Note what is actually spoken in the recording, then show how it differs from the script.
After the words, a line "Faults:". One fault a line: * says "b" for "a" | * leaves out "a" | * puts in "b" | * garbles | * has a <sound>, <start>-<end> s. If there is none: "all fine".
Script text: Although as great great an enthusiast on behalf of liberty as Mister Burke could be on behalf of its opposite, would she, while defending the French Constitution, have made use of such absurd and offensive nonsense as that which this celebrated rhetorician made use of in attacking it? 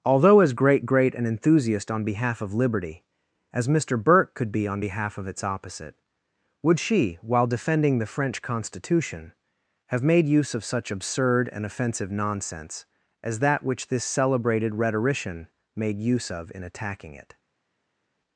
Although as great great an enthusiast on behalf of liberty as Mister Burke could be on behalf of its opposite, would she, while defending the French Constitution, have made use of such absurd and offensive nonsense as that which this celebrated rhetorician made use of in attacking it?
Faults:
all fine